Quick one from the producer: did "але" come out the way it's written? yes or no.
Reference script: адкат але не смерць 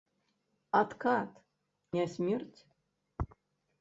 no